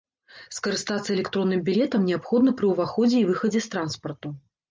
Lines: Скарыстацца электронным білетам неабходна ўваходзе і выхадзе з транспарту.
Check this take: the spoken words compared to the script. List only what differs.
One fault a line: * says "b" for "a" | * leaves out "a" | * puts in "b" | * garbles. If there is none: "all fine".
* puts in "пры"